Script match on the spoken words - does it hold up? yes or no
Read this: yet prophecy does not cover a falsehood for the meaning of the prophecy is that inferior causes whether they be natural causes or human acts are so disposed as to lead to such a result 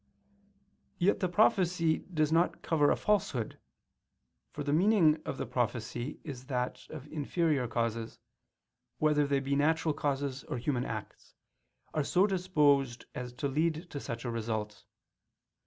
no